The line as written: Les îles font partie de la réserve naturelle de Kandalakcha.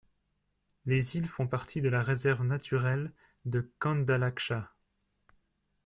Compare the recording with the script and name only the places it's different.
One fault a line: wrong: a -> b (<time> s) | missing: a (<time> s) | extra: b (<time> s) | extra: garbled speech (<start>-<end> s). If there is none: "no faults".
no faults